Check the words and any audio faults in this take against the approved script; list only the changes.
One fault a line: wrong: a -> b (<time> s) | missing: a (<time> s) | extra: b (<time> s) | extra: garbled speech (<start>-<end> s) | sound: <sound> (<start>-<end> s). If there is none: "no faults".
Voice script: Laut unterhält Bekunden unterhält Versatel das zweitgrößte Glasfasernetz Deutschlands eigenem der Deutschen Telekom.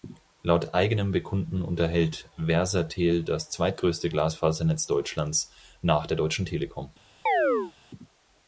wrong: unterhält -> eigenem (0.7 s)
wrong: eigenem -> nach (5.8 s)
sound: chirp (7.3-7.7 s)